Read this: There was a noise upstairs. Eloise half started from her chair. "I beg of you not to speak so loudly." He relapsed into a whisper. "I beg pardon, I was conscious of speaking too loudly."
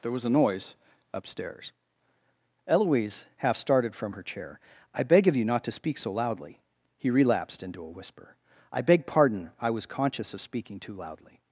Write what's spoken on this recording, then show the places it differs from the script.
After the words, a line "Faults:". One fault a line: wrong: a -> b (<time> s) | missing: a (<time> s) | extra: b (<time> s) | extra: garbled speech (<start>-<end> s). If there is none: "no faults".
There was a noise upstairs. Eloise half started from her chair. "I beg of you not to speak so loudly." He relapsed into a whisper. "I beg pardon, I was conscious of speaking too loudly."
Faults:
no faults